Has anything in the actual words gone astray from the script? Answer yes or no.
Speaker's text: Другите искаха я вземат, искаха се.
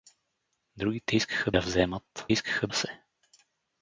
no